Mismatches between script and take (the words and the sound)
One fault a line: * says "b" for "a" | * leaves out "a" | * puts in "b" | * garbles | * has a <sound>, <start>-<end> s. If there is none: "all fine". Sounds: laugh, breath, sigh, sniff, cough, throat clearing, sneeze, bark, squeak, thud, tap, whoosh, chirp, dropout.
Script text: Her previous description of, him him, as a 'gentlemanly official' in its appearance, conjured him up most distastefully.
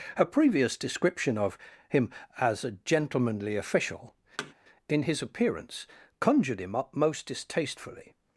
* leaves out "him"
* has a thud, 4.4-4.5 s
* says "his" for "its"